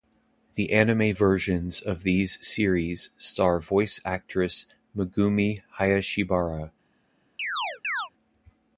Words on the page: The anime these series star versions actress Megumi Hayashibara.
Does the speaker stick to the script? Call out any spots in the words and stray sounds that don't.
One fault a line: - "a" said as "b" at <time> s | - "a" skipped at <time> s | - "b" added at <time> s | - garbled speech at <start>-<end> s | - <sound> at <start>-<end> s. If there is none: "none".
- "versions of" added at 1.1 s
- "versions" said as "voice" at 3.6 s
- chirp at 7.4-8.1 s